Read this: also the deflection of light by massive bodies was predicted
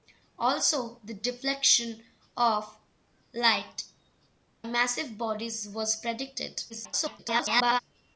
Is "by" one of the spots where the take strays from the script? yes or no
yes